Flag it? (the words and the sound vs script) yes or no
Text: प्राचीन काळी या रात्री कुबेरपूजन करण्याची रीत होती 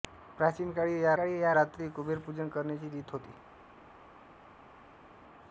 yes